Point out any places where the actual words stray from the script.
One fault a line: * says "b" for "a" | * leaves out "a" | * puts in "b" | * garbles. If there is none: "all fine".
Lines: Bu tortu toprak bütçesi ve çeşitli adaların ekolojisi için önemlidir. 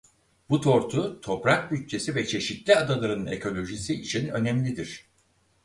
all fine